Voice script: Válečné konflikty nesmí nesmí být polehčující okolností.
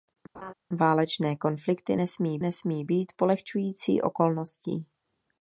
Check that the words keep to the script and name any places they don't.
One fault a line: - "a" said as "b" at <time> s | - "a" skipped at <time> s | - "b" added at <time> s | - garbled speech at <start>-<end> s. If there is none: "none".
none